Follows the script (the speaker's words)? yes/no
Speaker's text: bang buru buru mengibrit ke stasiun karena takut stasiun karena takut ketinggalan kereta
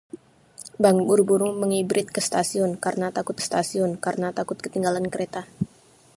yes